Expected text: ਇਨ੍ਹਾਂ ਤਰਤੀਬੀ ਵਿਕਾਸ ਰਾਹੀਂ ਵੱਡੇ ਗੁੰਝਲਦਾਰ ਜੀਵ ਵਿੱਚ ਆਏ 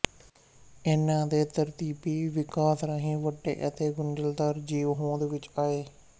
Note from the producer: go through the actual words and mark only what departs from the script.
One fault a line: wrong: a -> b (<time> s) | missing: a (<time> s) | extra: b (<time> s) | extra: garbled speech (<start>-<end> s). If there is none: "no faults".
extra: ਦੇ (1.3 s)
extra: ਅਤੇ (3.7 s)
extra: ਹੋਂਦ (4.9 s)